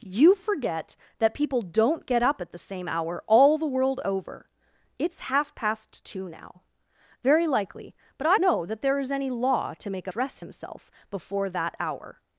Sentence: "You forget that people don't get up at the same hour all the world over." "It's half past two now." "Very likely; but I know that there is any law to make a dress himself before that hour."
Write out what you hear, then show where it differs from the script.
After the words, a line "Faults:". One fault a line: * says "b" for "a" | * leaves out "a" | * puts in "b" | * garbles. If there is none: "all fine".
"You forget that people don't get up at the same hour all the world over." "It's half past two now." "Very likely; but I know that there is any law to make a dress himself before that hour."
Faults:
all fine